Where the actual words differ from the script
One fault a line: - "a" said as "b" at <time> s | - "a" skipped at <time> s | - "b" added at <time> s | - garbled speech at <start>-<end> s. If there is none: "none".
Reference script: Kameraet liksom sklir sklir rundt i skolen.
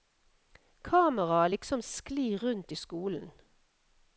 - "sklir" skipped at 2.4 s